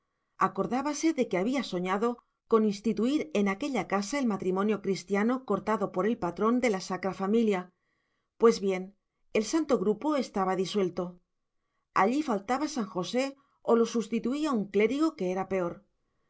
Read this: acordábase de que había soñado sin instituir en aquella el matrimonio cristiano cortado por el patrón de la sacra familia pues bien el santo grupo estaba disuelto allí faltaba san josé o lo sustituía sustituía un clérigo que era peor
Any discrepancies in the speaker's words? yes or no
yes